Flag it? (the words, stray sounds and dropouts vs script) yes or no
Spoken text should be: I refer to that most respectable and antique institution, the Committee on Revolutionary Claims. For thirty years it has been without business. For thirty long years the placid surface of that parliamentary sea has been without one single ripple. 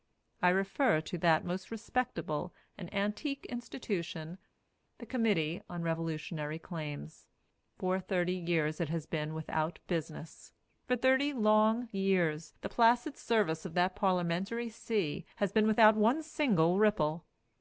no